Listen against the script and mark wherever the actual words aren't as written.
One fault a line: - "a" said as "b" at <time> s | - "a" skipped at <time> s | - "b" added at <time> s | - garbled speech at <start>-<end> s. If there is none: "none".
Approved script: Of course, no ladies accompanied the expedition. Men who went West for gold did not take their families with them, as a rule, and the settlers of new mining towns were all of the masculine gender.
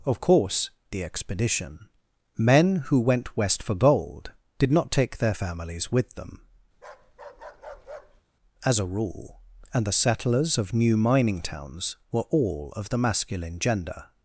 - "no ladies accompanied" skipped at 0.7 s